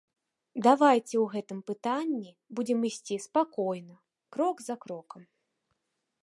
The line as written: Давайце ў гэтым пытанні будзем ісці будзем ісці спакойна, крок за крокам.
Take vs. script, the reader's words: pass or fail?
fail